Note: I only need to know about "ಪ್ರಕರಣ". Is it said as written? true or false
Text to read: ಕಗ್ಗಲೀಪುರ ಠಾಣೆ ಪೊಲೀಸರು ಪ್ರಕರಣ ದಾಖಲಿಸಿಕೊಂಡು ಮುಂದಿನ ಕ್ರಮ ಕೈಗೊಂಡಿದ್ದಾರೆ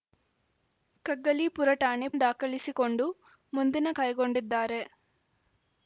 false